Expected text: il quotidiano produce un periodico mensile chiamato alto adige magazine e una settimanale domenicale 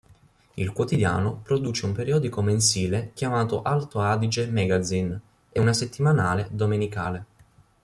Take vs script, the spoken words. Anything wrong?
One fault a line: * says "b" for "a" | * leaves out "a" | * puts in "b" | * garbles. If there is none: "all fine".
all fine